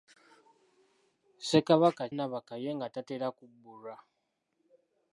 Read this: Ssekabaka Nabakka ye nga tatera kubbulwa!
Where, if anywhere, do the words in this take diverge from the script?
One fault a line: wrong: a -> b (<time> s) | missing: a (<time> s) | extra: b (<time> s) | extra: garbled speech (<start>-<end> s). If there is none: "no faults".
no faults